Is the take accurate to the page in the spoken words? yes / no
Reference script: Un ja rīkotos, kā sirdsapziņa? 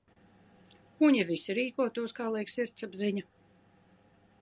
no